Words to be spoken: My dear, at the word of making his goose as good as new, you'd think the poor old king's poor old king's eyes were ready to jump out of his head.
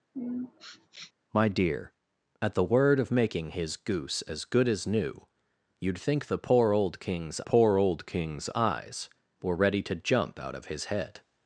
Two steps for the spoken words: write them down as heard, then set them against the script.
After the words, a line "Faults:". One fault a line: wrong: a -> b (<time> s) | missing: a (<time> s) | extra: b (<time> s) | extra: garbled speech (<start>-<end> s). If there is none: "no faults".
My dear, at the word of making his goose as good as new, you'd think the poor old king's poor old king's eyes were ready to jump out of his head.
Faults:
no faults